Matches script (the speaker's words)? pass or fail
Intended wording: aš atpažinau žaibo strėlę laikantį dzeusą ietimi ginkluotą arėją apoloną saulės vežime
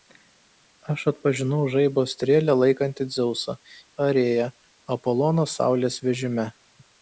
fail